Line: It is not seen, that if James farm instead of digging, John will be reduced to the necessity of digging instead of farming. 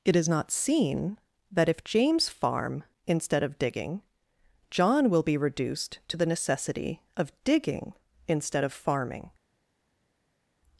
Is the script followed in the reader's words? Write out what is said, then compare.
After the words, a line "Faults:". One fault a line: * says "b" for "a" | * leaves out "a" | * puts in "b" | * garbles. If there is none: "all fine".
It is not seen, that if James farm instead of digging, John will be reduced to the necessity of digging instead of farming.
Faults:
all fine